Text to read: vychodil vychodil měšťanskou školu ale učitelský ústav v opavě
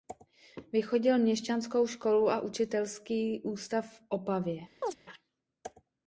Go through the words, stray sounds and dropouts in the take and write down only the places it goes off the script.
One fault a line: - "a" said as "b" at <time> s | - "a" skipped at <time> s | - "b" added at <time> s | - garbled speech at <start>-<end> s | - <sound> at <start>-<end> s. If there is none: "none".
- "vychodil" skipped at 1.2 s
- "ale" said as "a" at 2.3 s
- chirp at 4.8-5.0 s